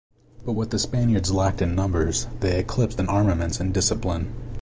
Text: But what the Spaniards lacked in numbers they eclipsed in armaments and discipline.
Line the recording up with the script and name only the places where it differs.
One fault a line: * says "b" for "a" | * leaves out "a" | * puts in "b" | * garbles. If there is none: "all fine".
all fine